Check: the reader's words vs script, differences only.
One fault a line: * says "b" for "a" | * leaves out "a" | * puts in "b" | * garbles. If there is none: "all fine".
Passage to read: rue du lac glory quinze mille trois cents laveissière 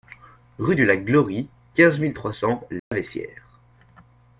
all fine